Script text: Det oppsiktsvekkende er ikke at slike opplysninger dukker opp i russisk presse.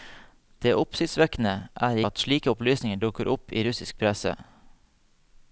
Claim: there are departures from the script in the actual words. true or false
true